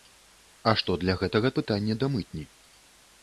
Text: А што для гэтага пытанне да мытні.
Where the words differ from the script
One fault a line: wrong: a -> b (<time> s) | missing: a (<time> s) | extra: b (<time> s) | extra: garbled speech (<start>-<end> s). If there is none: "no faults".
no faults